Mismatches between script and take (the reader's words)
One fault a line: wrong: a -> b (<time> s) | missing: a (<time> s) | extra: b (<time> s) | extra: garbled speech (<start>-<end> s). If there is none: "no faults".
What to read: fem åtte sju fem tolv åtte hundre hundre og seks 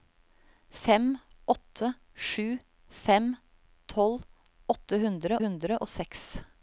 no faults